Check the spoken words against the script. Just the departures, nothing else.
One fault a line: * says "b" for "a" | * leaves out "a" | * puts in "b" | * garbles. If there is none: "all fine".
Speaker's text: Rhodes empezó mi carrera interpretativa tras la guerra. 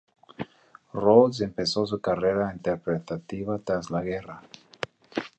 * says "su" for "mi"